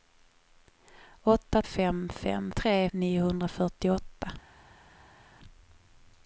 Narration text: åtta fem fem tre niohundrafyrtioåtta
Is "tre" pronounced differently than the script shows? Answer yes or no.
no